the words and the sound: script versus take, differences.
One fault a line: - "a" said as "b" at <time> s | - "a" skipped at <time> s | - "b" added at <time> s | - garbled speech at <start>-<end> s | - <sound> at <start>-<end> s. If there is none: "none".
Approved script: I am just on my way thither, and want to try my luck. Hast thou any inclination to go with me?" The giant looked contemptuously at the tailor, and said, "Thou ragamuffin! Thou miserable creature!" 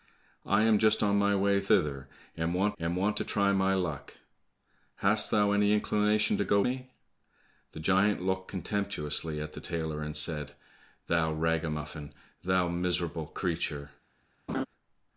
- "and want" added at 2.8 s
- "with" skipped at 6.6 s
- laugh at 14.5-14.7 s